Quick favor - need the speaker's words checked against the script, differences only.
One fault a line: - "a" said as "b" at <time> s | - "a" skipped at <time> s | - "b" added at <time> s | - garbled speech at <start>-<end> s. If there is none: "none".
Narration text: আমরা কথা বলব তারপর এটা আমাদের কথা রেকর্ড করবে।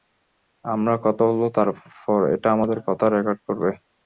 none